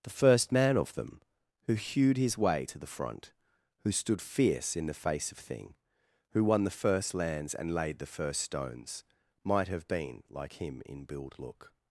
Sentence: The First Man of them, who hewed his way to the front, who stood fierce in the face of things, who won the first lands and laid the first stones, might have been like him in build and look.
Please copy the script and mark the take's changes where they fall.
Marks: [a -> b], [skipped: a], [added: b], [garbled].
The First Man of them, who hewed his way to the front, who stood fierce in the face of [things, -> thing] who won the first lands and laid the first stones, might have been like him in build [skipped: and] look.